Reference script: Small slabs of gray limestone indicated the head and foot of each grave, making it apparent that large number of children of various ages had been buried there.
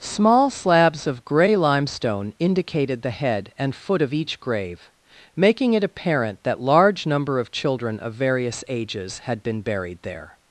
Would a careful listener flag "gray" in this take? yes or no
no